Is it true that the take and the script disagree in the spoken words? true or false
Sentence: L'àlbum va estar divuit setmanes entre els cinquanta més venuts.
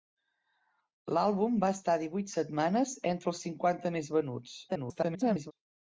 true